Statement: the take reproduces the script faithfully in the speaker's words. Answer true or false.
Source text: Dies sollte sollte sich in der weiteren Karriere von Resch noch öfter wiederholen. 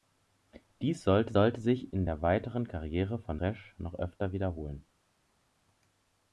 true